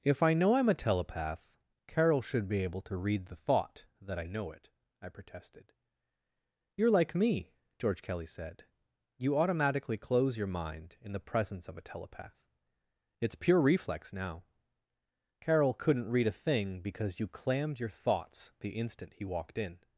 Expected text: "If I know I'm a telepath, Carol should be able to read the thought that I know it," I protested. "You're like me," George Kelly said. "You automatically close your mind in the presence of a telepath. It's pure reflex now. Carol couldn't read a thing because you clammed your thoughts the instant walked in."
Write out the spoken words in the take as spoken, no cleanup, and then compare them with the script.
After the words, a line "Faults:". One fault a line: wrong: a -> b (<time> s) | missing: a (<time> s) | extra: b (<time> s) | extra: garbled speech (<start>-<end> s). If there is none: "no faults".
"If I know I'm a telepath, Carol should be able to read the thought that I know it," I protested. "You're like me," George Kelly said. "You automatically close your mind in the presence of a telepath. It's pure reflex now. Carol couldn't read a thing because you clammed your thoughts the instant he walked in."
Faults:
extra: he (19.1 s)